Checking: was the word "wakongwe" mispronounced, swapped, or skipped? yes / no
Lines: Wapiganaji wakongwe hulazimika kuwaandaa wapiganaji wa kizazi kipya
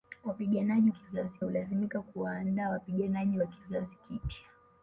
yes